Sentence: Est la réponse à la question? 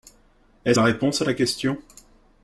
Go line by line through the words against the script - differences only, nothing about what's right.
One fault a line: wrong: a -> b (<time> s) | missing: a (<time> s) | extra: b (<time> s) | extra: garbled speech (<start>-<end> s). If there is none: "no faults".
no faults